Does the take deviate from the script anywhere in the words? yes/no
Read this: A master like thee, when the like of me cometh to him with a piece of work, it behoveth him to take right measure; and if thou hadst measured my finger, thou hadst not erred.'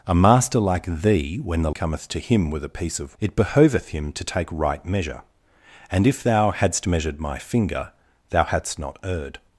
yes